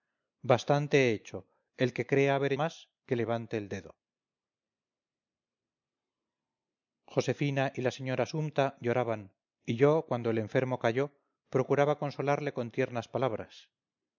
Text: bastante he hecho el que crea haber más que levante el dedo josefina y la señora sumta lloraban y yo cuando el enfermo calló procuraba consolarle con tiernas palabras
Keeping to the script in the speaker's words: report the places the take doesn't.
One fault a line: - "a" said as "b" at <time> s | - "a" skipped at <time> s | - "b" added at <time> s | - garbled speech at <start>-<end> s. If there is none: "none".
none